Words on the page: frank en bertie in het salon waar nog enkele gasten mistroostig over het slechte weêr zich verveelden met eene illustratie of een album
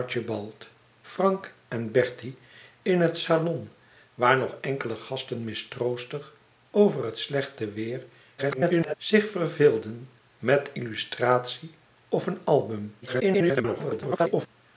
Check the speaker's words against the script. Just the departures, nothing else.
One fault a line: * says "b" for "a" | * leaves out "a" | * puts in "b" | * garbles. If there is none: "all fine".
* garbles
* leaves out "eene"
* garbles